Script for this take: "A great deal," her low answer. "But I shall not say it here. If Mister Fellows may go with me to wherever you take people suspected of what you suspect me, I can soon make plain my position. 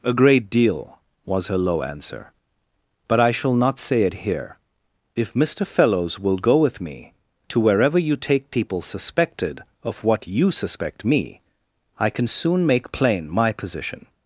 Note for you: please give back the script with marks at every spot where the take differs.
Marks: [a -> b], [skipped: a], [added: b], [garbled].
"A great deal," [added: was] her low answer. "But I shall not say it here. If Mister Fellows [may -> will] go with me to wherever you take people suspected of what you suspect me, I can soon make plain my position.